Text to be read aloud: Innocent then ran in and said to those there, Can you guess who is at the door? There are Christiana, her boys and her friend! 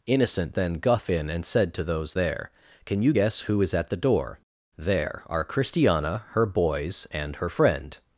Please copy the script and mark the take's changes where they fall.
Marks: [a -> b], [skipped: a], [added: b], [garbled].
Innocent then [ran -> guff] in and said to those there, Can you guess who is at the door? There are Christiana, her boys and her friend!